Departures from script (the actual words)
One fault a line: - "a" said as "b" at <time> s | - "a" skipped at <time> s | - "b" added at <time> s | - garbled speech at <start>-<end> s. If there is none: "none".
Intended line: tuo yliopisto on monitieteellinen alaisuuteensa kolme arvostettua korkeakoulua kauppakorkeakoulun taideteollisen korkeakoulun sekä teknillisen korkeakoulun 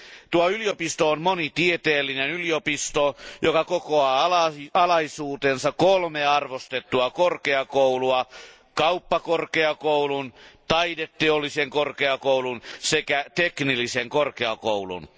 - "yliopisto joka kokoaa" added at 2.3 s